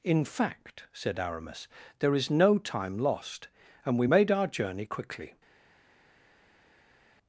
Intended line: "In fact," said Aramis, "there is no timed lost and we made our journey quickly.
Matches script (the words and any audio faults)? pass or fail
fail